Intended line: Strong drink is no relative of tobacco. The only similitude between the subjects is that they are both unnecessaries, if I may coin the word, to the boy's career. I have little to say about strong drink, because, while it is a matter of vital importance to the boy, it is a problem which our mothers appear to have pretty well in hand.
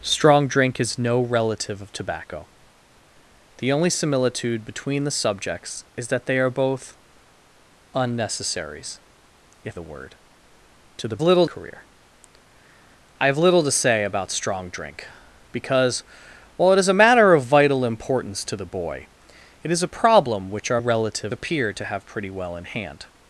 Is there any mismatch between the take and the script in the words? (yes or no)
yes